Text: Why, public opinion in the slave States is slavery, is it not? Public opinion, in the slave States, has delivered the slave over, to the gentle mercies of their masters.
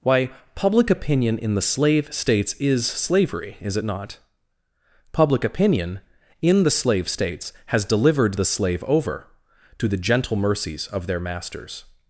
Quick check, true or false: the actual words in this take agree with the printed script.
true